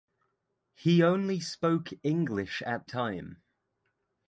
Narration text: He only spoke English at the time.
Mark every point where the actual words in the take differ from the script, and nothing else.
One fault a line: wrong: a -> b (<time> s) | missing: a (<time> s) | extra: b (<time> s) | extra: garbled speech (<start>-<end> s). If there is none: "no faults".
missing: the (2.9 s)